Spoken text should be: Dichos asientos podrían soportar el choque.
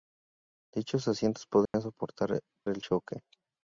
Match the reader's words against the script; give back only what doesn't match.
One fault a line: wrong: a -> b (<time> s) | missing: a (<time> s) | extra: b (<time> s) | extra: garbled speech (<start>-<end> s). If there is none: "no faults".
no faults